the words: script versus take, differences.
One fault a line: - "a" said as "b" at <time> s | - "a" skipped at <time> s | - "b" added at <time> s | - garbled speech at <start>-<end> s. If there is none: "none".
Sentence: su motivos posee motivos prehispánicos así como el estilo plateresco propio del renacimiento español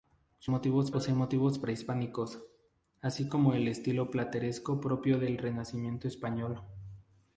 none